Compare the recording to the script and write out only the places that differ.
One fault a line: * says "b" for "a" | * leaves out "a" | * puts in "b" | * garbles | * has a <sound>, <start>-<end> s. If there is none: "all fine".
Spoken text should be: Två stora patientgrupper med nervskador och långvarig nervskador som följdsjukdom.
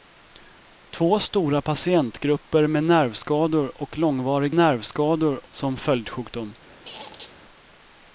* has a squeak, 6.8-7.4 s